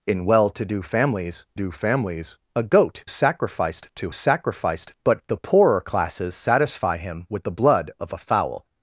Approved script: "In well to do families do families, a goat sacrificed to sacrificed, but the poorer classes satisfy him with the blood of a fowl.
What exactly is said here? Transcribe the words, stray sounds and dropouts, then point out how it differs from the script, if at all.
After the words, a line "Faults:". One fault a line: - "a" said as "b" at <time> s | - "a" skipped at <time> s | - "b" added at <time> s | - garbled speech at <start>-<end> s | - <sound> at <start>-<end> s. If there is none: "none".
"In well to do families do families, a goat sacrificed to sacrificed, but the poorer classes satisfy him with the blood of a fowl.
Faults:
none